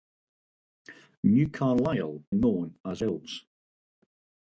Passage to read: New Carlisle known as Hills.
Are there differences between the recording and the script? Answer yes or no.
no